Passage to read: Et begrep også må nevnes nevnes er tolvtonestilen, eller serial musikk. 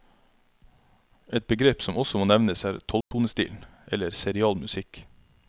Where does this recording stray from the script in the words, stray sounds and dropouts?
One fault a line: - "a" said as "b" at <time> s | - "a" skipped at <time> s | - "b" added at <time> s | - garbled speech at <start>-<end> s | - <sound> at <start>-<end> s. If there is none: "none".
- "som" added at 1.8 s
- "nevnes" skipped at 2.6 s
- dropout at 3.0-3.1 s